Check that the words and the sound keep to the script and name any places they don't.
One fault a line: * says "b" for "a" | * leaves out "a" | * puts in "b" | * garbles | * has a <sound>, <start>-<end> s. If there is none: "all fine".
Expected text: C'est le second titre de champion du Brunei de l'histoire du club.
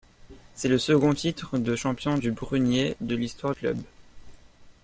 * leaves out "du"